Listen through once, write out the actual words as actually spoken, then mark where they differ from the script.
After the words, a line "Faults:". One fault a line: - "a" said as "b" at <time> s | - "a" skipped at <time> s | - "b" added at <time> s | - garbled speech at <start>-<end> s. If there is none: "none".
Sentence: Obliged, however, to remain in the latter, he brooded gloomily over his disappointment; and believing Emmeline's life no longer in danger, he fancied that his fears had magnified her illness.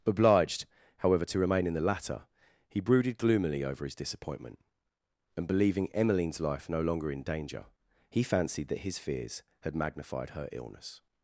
Obliged, however, to remain in the latter, he brooded gloomily over his disappointment; and believing Emmeline's life no longer in danger, he fancied that his fears had magnified her illness.
Faults:
none